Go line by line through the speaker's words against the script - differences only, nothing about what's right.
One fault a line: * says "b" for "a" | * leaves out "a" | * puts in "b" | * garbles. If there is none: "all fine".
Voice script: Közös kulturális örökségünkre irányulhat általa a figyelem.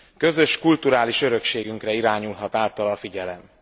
all fine